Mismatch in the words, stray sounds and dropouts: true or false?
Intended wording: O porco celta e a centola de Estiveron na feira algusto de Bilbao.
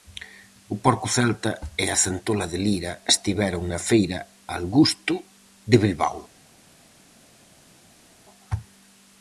true